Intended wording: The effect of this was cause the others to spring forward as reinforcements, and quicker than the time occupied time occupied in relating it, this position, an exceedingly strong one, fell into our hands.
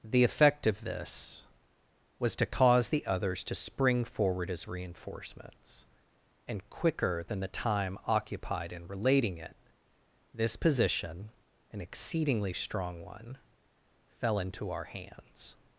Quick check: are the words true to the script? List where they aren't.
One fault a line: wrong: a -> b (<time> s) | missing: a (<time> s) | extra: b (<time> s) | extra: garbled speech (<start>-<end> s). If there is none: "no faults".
extra: to (2.4 s)
missing: time occupied (8.7 s)